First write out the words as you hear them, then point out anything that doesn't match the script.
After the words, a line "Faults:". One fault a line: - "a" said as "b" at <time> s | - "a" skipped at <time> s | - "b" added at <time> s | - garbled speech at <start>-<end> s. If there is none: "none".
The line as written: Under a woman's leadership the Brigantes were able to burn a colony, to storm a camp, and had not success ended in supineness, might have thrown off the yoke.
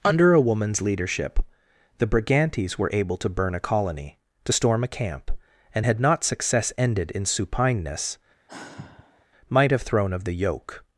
Under a woman's leadership the Brigantes were able to burn a colony, to storm a camp, and had not success ended in supineness, might have thrown of the yoke.
Faults:
- "off" said as "of" at 10.1 s